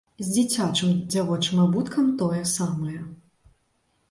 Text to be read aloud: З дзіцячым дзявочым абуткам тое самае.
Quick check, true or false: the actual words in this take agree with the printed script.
true